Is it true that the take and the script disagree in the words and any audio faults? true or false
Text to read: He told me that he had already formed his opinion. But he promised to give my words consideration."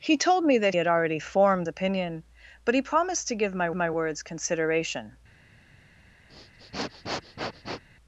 true